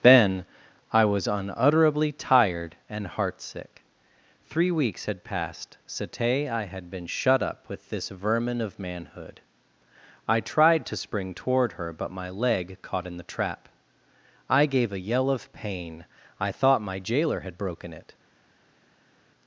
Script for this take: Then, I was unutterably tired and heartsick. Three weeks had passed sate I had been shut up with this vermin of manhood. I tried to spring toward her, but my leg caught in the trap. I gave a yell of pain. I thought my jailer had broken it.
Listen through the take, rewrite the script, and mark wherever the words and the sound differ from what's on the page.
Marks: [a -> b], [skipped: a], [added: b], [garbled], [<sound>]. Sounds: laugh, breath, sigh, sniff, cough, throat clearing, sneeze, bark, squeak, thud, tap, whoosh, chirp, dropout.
Then, I was unutterably tired and heartsick. Three weeks had passed sate I had been shut up with this vermin of manhood. I tried to spring toward her, but my leg caught in the trap. I gave a yell of pain. I thought my jailer had broken it.